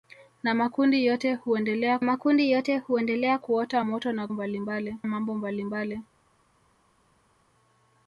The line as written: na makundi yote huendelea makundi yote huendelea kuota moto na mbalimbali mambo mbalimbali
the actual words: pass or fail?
pass